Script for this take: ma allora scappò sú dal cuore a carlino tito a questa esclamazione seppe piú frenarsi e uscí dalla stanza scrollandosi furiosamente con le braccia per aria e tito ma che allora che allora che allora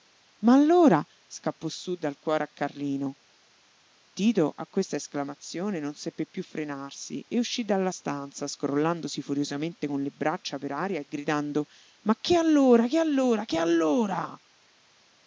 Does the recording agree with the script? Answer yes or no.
no